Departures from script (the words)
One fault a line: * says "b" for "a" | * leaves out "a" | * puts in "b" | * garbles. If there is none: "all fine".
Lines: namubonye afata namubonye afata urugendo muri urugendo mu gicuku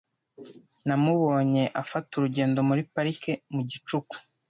* leaves out "namubonye afata"
* says "parike" for "urugendo"